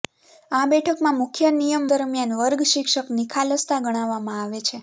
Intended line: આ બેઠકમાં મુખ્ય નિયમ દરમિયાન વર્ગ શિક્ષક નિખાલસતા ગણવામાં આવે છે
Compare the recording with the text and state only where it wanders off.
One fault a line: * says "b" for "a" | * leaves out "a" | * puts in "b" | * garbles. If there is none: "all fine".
all fine